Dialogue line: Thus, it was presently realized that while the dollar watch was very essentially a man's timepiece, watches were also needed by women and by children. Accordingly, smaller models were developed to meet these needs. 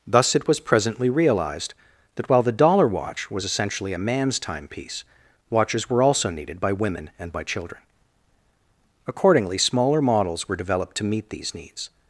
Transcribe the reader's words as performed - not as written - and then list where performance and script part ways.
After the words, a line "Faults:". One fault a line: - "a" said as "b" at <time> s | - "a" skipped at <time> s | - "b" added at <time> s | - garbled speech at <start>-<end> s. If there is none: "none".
Thus, it was presently realized that while the dollar watch was essentially a man's timepiece, watches were also needed by women and by children. Accordingly, smaller models were developed to meet these needs.
Faults:
- "very" skipped at 3.5 s